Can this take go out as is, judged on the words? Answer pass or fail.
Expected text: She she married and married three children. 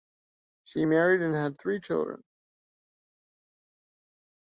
fail